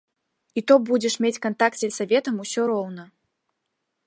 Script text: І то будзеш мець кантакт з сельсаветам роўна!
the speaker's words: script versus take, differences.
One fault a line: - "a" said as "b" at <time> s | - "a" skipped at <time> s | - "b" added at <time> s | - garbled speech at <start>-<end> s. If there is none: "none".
- "усё" added at 2.5 s